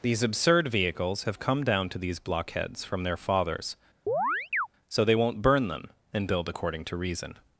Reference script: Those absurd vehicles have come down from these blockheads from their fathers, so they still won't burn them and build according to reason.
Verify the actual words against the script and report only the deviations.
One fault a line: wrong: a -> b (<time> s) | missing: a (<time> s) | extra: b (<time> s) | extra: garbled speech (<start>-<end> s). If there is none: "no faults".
wrong: Those -> These (0.0 s)
wrong: from -> to (1.9 s)
missing: still (5.1 s)